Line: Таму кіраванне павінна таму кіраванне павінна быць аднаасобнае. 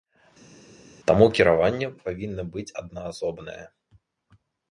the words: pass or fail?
fail